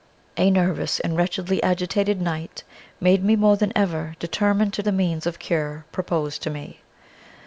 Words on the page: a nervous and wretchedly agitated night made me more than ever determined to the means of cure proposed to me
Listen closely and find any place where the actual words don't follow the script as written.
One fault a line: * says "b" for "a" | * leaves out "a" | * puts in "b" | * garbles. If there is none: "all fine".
all fine